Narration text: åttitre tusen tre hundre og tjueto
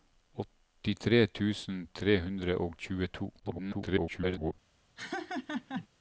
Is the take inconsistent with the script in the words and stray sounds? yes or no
yes